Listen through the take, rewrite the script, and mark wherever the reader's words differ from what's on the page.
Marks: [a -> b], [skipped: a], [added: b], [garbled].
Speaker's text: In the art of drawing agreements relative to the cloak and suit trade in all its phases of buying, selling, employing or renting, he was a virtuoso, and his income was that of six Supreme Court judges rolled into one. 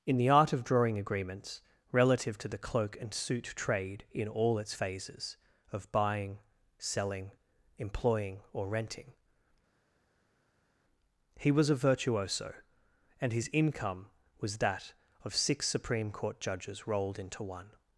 In the art of drawing agreements relative to the cloak and suit trade in all its phases of buying, selling, employing or renting, he was a virtuoso, and his income was that of six Supreme Court judges rolled into one.